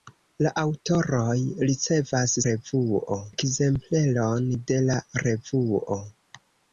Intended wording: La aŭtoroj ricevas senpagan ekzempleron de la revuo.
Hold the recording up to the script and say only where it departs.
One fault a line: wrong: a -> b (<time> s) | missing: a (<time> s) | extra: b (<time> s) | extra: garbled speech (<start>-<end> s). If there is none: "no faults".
wrong: senpagan -> revuo (2.5 s)